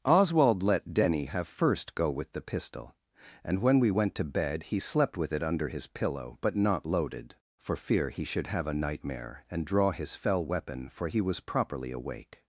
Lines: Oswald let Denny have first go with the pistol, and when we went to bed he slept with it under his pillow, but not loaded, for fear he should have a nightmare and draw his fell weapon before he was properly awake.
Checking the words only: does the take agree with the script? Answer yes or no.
no